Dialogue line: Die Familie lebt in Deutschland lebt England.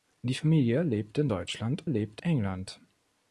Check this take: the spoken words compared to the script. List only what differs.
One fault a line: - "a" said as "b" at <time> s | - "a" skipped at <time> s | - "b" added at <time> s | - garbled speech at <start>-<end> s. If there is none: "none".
none